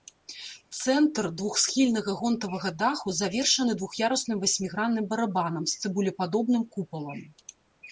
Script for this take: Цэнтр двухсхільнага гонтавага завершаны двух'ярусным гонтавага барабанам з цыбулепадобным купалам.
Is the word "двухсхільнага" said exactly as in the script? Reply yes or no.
yes